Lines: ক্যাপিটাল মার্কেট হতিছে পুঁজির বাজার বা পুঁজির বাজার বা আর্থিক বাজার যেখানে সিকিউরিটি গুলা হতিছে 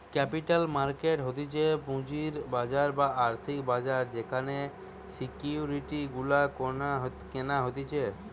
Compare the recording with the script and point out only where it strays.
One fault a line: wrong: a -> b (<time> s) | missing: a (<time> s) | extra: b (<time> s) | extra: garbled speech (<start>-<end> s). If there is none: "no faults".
missing: পুঁজির বাজার বা (3.1 s)
extra: কেনা (7.3 s)